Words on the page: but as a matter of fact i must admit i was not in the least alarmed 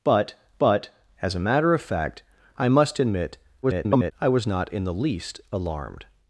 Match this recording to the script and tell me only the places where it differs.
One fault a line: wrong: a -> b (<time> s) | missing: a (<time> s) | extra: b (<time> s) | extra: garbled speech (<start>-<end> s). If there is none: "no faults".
extra: but (0.6 s)
extra: garbled speech (3.6-4.1 s)